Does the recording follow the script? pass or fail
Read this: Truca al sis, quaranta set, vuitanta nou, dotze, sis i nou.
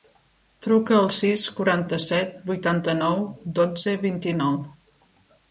fail